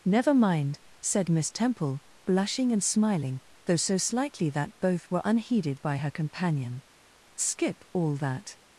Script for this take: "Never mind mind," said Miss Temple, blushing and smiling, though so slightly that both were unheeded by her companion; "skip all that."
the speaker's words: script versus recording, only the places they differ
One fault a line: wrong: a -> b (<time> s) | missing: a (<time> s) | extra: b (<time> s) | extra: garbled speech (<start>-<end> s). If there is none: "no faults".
missing: mind (0.8 s)